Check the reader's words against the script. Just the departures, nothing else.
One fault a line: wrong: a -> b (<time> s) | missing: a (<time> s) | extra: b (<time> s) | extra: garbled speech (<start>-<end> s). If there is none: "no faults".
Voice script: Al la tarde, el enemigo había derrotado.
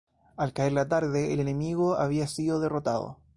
extra: caer (0.5 s)
extra: sido (2.2 s)